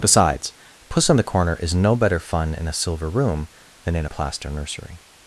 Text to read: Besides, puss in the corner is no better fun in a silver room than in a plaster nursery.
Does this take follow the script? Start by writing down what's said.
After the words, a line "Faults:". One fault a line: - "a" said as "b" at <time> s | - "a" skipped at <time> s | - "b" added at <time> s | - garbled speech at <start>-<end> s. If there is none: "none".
Besides, puss in the corner is no better fun in a silver room than in a plaster nursery.
Faults:
none